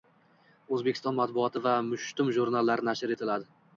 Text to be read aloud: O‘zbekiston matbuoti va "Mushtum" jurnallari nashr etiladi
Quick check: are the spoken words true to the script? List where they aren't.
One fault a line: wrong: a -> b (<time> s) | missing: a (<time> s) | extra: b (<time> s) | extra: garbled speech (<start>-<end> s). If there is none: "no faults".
no faults